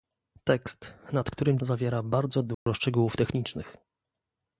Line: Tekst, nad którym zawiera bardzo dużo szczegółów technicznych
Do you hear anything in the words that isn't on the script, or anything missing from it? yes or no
no